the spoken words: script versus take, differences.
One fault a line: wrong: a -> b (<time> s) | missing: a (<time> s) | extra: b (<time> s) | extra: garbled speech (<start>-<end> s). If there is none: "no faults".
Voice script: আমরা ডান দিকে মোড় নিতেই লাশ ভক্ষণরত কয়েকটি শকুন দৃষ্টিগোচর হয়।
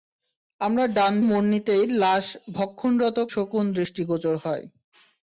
missing: দিকে (1.1 s)
missing: কয়েকটি (3.2 s)